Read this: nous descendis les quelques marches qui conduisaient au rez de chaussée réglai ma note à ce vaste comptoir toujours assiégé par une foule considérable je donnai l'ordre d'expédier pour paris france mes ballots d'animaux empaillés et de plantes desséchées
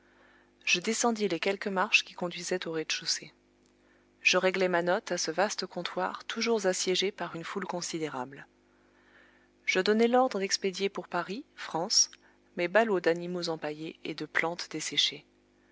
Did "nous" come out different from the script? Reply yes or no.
yes